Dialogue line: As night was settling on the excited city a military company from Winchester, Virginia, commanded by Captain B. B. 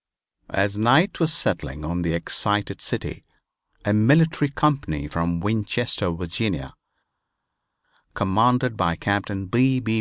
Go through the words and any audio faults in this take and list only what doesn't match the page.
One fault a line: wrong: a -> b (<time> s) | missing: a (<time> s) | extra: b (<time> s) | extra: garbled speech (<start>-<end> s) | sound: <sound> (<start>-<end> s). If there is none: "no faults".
no faults